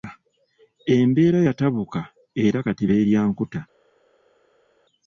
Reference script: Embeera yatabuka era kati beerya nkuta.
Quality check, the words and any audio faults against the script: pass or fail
pass